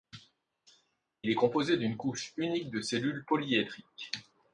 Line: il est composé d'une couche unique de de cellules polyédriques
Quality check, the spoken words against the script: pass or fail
fail